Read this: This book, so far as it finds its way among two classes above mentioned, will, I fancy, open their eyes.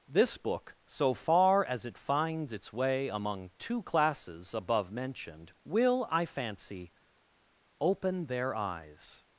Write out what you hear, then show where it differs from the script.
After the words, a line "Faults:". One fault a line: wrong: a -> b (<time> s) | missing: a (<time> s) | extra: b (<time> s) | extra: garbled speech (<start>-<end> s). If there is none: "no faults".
This book, so far as it finds its way among two classes above mentioned, will, I fancy, open their eyes.
Faults:
no faults